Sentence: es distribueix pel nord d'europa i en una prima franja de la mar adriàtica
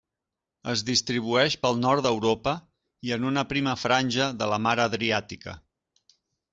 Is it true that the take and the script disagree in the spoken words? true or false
false